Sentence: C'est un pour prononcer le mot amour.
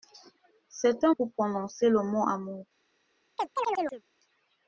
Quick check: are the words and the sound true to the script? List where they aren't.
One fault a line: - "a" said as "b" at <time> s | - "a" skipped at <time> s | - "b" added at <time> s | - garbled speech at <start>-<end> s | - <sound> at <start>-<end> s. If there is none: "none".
- chirp at 3.4-4.0 s